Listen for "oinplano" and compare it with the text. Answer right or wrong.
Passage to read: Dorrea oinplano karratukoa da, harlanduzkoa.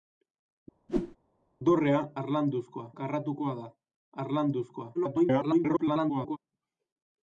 wrong